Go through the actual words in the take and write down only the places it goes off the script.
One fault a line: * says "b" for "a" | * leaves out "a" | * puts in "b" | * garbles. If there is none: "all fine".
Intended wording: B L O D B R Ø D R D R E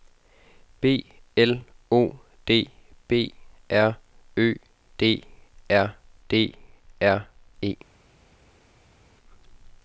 all fine